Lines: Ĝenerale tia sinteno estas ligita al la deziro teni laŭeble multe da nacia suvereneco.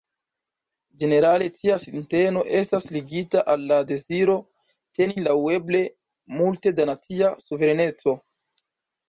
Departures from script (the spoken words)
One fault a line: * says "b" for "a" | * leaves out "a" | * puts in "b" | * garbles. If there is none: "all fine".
all fine